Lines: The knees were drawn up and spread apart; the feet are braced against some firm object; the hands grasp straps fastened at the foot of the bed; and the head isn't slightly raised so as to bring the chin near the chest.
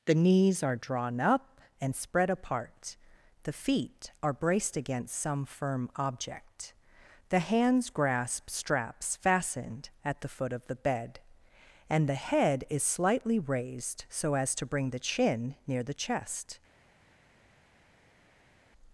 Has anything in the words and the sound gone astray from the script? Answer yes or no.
yes